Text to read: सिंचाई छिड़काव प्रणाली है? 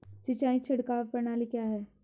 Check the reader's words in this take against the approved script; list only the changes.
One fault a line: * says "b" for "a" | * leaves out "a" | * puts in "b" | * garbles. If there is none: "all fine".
* puts in "क्या"